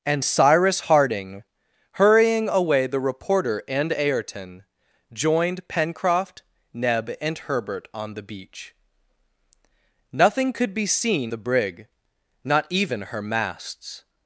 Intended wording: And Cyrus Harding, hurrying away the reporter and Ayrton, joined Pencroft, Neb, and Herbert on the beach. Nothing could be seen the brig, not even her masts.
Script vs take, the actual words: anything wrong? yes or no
no